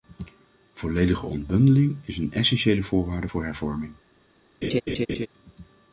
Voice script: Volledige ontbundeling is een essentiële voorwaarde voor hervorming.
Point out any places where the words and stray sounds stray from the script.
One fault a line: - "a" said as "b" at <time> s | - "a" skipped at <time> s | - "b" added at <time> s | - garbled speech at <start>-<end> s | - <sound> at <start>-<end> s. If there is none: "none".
- laugh at 4.6-5.3 s